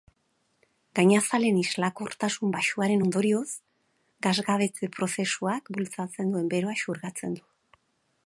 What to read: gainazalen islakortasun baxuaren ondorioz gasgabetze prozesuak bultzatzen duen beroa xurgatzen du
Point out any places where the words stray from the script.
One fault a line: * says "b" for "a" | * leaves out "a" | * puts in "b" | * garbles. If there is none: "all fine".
all fine